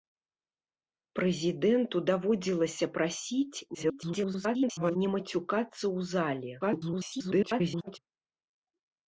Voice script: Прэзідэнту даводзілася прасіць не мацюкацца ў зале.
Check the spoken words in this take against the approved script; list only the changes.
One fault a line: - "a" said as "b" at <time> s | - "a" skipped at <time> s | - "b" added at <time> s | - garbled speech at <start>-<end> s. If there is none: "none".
- garbled speech at 3.7-5.0 s
- garbled speech at 6.6-8.0 s